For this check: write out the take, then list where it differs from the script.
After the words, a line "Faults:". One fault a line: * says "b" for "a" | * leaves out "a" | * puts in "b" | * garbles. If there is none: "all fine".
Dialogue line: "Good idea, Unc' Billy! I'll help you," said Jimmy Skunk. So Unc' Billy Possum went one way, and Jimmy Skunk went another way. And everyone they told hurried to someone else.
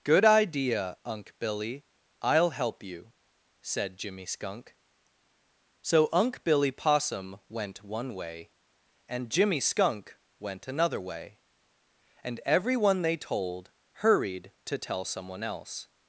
"Good idea, Unc' Billy! I'll help you," said Jimmy Skunk. So Unc' Billy Possum went one way, and Jimmy Skunk went another way. And everyone they told hurried to tell someone else.
Faults:
* puts in "tell"